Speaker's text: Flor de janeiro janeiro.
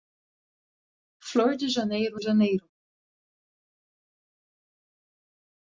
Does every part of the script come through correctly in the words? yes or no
yes